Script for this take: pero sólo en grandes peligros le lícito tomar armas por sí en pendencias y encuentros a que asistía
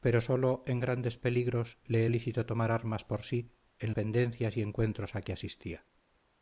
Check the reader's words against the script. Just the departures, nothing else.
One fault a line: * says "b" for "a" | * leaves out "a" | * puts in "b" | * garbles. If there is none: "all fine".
all fine